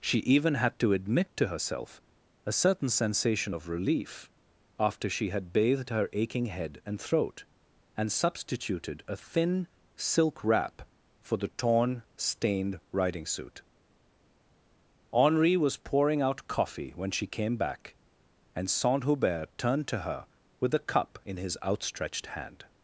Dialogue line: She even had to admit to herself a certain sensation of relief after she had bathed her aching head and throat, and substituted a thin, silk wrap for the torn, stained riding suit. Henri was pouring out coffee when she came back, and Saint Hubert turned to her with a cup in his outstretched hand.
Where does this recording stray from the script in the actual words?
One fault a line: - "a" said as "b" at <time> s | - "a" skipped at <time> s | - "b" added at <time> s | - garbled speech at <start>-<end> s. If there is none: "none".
none